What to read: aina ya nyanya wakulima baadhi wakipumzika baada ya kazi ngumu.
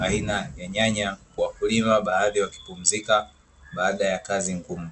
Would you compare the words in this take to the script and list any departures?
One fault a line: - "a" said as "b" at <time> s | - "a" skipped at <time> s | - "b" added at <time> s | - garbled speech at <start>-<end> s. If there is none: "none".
none